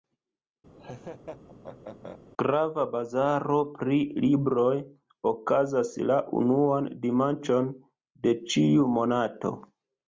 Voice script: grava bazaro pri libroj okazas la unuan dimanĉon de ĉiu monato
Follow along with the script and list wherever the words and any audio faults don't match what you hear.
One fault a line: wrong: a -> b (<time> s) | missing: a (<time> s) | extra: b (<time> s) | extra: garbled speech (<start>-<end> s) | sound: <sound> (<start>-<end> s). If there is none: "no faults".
sound: laugh (0.8-2.2 s)